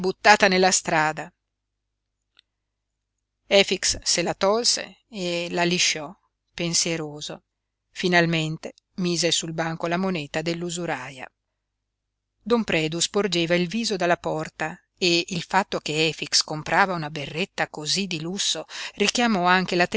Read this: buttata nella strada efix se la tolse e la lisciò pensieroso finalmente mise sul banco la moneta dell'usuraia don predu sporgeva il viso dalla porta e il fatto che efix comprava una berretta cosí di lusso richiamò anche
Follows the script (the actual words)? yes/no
yes